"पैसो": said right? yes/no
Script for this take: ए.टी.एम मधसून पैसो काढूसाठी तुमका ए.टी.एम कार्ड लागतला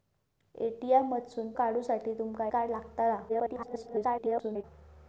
no